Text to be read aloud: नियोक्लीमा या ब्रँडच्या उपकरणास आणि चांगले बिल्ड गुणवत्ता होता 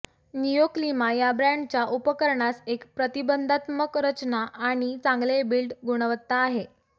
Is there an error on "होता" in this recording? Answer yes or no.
yes